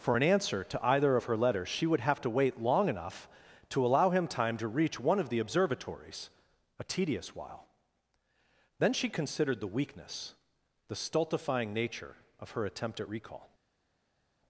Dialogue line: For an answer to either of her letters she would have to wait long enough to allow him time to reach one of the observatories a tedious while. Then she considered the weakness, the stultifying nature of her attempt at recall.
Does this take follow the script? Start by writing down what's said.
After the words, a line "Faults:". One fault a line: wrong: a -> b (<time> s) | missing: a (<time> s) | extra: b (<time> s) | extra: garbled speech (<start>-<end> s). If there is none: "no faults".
For an answer to either of her letters she would have to wait long enough to allow him time to reach one of the observatories a tedious while. Then she considered the weakness, the stultifying nature of her attempt at recall.
Faults:
no faults